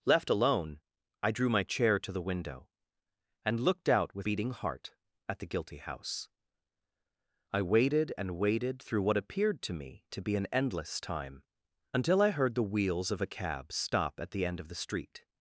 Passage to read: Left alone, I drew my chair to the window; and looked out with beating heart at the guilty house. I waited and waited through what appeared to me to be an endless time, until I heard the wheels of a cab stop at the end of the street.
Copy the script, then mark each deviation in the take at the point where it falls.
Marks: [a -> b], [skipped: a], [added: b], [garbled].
Left alone, I drew my chair to the window; and looked out with beating heart at the guilty house. I waited and waited through what appeared to me to be an endless time, until I heard the wheels of a cab stop at the end of the street.